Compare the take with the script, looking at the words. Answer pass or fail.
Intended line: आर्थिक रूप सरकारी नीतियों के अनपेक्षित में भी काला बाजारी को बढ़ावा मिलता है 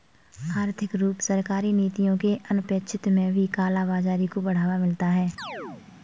pass